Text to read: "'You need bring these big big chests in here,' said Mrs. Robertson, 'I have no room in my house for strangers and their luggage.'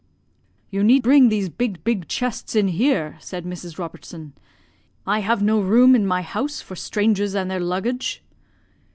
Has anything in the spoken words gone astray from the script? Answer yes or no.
no